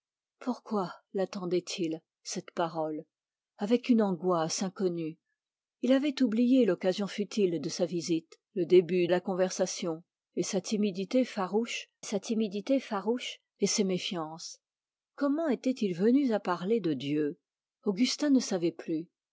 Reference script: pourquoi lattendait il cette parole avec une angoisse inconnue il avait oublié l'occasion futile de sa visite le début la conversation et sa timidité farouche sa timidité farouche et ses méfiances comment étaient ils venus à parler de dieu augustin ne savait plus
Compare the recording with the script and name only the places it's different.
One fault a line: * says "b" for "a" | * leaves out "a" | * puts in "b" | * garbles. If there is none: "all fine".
all fine